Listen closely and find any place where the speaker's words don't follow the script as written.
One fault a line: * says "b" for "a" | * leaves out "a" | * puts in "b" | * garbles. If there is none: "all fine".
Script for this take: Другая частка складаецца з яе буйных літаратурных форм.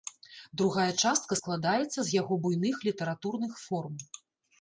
* says "яго" for "яе"